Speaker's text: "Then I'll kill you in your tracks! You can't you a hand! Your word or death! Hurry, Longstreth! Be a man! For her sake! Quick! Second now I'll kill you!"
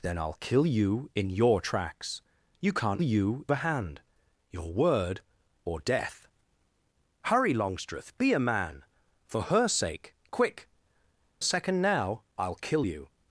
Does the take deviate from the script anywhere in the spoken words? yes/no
no